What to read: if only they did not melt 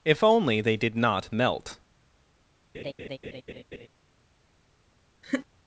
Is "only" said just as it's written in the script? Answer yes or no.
yes